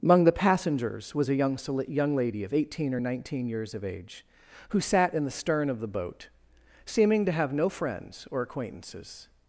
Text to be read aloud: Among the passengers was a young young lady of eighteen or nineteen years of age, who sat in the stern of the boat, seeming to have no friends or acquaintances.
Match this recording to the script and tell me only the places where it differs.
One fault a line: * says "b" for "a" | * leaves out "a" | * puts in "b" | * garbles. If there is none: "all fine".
all fine